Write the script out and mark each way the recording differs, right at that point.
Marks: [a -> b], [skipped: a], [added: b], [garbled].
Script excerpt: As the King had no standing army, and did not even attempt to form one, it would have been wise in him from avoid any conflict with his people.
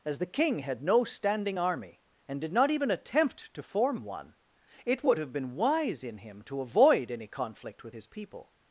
As the King had no standing army, and did not even attempt to form one, it would have been wise in him [from -> to] avoid any conflict with his people.